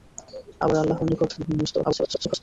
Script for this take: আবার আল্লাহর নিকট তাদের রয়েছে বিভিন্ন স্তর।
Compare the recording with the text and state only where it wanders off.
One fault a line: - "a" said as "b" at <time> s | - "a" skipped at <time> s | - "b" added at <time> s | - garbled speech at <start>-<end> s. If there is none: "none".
- "তাদের রয়েছে" skipped at 1.3 s
- garbled speech at 1.8-2.4 s